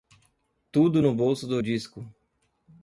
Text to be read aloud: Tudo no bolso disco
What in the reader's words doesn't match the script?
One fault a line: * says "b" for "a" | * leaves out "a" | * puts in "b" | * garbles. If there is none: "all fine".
* puts in "do"